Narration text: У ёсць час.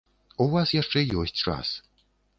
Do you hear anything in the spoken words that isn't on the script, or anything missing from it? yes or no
yes